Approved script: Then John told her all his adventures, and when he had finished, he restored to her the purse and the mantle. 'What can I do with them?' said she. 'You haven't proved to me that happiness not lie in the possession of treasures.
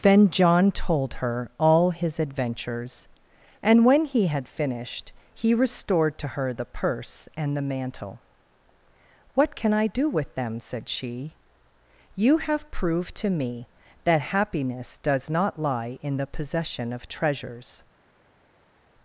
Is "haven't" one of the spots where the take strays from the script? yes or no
yes